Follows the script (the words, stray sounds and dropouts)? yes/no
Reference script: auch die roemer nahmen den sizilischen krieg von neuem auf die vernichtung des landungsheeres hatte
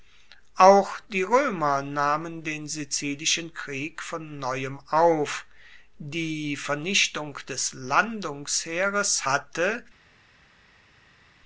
yes